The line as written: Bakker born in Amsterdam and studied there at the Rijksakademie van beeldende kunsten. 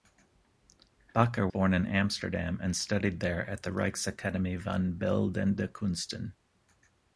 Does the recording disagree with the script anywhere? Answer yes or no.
no